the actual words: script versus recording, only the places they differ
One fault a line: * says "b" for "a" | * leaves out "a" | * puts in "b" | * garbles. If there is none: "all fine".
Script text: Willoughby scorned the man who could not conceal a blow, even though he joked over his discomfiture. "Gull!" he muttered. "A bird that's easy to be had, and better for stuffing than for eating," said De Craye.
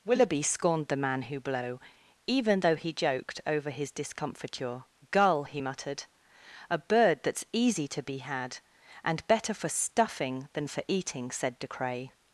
* leaves out "could not conceal a"